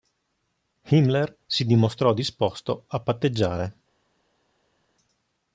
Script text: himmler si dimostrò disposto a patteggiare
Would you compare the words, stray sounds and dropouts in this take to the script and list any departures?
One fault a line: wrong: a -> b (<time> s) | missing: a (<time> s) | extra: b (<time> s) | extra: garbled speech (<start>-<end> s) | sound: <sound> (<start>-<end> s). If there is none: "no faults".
no faults